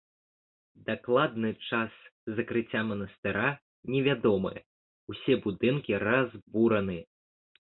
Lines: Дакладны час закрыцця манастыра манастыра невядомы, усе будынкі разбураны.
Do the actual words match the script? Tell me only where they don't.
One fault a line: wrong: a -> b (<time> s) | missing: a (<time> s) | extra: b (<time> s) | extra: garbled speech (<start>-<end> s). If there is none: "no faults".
missing: манастыра (3.5 s)